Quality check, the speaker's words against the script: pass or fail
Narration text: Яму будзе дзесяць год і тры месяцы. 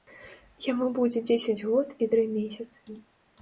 pass